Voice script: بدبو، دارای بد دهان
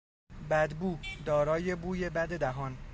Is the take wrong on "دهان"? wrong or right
right